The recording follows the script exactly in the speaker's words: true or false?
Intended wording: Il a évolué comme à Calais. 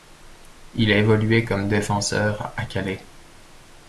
false